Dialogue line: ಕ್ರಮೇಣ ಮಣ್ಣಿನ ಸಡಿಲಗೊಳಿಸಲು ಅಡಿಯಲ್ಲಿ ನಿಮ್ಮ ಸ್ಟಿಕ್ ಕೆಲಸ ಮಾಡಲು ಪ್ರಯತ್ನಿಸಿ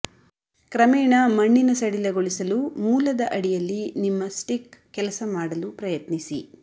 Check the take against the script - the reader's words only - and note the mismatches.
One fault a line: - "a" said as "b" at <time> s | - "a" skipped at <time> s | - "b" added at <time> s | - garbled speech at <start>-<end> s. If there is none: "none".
- "ಮೂಲದ" added at 2.8 s